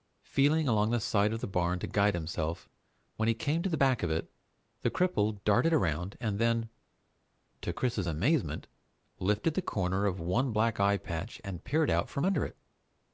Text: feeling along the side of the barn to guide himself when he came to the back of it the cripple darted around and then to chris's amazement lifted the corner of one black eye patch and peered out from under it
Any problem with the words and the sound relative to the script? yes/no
no